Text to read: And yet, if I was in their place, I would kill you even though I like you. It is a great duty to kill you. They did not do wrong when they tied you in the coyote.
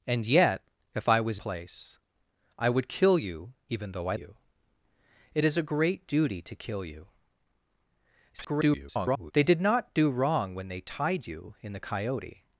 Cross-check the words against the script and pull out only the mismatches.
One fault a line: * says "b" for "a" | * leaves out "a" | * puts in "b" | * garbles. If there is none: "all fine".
* leaves out "in their"
* leaves out "like"
* garbles